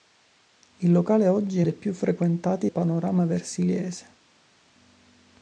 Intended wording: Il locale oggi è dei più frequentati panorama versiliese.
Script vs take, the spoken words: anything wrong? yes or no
no